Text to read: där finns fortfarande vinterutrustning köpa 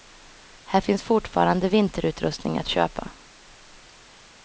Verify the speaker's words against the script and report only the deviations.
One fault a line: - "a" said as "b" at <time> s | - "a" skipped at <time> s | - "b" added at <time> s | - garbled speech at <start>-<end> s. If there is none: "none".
- "där" said as "här" at 0.6 s
- "att" added at 2.6 s